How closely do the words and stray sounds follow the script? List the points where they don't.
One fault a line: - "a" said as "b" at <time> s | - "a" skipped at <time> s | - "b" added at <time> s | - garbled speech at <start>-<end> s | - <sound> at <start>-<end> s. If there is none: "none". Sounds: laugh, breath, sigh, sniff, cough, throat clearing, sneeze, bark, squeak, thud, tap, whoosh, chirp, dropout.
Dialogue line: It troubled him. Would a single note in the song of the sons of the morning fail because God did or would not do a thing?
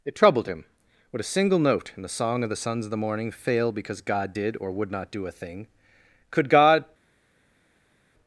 - "Could God" added at 6.3 s